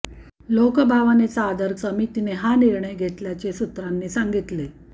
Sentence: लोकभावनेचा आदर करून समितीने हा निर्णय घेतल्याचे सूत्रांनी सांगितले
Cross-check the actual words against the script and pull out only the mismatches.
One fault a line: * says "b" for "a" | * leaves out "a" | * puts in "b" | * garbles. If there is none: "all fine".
* leaves out "करून"